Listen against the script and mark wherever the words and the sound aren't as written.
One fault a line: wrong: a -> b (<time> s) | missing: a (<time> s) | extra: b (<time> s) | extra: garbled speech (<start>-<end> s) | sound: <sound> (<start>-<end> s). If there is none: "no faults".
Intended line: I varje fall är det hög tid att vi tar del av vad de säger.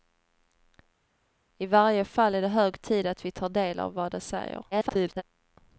extra: garbled speech (4.7-5.2 s)